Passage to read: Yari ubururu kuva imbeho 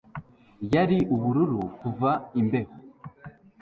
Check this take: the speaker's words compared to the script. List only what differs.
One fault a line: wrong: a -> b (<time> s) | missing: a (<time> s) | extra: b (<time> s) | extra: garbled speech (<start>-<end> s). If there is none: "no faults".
no faults